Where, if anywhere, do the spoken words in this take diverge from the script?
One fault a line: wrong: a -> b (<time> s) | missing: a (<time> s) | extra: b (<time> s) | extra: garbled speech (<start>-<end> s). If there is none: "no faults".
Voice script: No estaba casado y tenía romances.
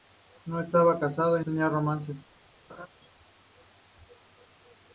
no faults